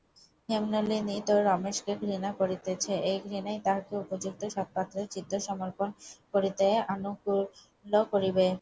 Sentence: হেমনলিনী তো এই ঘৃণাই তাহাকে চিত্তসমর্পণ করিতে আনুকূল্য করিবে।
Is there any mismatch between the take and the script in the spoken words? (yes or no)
yes